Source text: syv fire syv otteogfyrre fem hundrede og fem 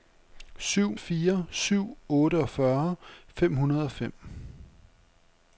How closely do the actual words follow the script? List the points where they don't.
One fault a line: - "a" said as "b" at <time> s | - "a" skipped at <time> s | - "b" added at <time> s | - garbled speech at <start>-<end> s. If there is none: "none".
none